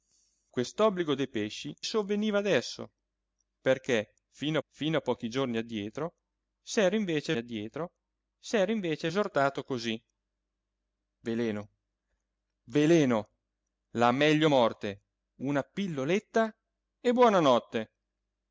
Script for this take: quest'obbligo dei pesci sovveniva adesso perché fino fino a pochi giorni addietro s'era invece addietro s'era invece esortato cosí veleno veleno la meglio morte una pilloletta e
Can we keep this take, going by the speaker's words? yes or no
yes